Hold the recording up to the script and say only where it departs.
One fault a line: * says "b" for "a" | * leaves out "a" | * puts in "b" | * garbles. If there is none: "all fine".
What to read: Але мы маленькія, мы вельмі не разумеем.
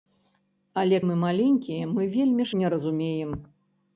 all fine